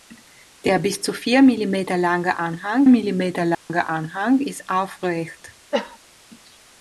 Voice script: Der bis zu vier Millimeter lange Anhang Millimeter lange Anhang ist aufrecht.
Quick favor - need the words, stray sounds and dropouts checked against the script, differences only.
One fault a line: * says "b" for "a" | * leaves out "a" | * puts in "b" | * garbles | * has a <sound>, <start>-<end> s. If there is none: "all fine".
* has a dropout, 3.5-3.7 s
* has a cough, 5.7-6.0 s